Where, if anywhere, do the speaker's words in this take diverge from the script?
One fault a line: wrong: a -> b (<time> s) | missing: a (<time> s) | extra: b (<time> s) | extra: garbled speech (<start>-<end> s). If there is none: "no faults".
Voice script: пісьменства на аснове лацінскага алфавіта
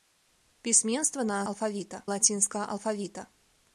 wrong: аснове -> алфавіта (1.5 s)